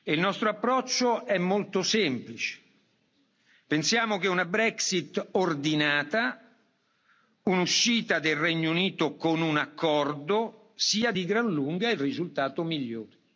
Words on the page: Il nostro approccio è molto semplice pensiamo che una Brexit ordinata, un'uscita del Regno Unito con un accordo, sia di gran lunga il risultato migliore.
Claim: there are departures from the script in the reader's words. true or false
false